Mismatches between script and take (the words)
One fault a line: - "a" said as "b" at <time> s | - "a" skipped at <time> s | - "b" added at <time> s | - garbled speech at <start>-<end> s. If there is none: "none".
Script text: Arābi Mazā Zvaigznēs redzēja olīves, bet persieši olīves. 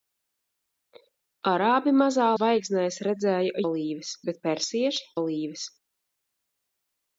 none